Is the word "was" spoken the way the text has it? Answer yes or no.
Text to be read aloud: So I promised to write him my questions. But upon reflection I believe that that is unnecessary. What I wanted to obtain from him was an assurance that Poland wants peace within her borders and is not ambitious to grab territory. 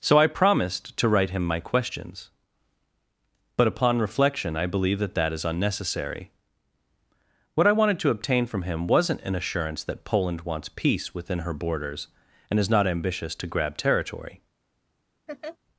no